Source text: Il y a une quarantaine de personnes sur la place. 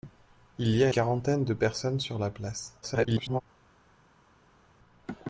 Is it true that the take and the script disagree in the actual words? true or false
true